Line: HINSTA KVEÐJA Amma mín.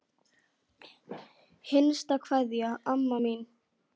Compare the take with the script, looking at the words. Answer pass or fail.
pass